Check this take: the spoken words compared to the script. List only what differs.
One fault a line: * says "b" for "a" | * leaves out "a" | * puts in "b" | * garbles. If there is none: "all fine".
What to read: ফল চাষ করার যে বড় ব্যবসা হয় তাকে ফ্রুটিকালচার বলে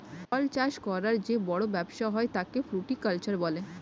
all fine